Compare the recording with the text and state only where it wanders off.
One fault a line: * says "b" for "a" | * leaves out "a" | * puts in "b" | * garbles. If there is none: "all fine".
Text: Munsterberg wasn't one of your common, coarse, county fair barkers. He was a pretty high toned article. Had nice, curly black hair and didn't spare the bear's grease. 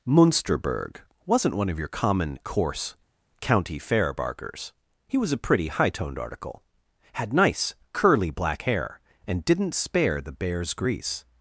all fine